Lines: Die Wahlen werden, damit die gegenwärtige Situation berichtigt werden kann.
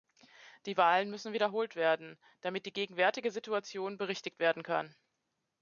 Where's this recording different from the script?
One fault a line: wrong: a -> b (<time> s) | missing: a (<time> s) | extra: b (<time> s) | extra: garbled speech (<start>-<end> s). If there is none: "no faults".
extra: müssen wiederholt (1.1 s)